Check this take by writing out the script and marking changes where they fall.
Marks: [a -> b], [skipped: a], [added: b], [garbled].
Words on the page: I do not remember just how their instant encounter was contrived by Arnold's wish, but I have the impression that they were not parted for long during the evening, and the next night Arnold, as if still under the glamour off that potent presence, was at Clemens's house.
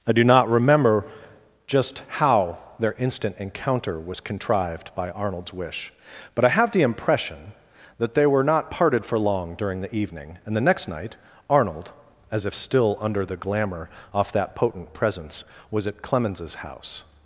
I do not remember just how their instant encounter was contrived by Arnold's wish, but I have the impression that they were not parted for long during the evening, and the next night Arnold, as if still under the glamour off that potent presence, was at Clemens's house.